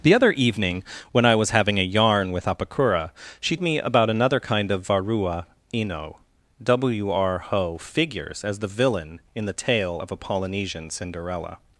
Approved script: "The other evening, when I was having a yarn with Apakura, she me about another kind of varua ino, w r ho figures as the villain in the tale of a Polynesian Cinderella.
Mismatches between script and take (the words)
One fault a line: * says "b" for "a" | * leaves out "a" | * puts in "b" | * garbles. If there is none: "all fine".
all fine